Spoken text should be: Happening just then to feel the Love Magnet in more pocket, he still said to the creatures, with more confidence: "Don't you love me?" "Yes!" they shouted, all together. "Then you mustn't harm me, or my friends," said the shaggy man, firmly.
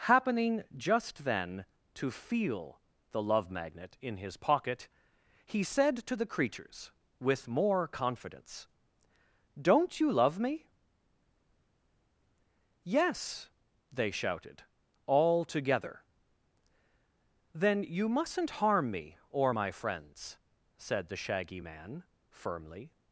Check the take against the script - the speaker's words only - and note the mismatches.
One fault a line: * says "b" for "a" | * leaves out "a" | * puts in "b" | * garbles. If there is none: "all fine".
* says "his" for "more"
* leaves out "still"